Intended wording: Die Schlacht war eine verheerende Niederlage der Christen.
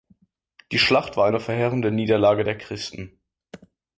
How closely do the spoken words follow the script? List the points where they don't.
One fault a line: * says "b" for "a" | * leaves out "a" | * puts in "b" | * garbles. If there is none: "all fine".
all fine